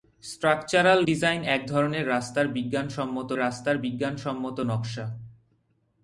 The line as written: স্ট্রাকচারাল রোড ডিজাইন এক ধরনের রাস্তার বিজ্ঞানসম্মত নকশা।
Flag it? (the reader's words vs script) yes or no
yes